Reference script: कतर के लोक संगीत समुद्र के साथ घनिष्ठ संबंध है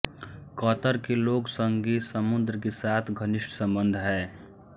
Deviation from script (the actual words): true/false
false